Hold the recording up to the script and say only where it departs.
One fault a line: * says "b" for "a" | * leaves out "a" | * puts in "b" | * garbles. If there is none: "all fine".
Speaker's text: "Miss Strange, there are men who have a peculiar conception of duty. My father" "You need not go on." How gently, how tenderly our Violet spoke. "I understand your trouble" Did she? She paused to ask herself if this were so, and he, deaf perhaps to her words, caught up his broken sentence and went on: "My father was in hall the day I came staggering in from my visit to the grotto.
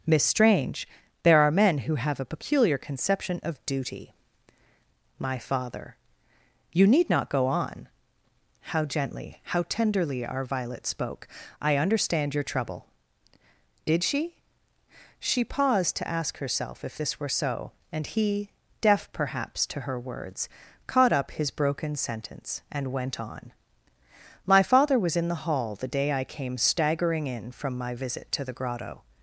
* puts in "the"